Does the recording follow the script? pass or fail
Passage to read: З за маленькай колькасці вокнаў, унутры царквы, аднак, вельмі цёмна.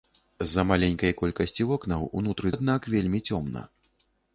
fail